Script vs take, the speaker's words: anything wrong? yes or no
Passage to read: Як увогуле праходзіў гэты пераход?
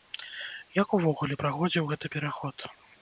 no